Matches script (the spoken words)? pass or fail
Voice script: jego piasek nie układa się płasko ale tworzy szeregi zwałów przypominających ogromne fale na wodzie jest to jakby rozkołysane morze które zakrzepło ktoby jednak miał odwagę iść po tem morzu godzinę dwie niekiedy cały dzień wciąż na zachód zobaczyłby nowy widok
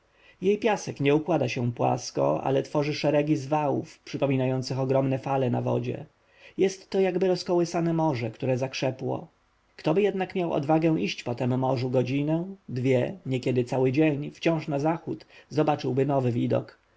fail